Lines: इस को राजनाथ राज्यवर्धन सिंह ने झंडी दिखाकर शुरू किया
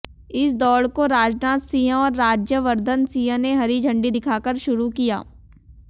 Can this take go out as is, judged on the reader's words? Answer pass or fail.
fail